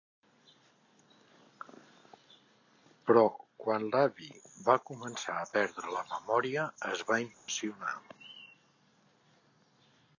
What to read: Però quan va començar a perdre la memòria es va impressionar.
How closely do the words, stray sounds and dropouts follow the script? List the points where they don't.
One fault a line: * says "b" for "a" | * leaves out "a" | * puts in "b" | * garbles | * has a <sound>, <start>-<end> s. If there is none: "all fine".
* puts in "l'avi"
* has a dropout, 7.3-7.5 s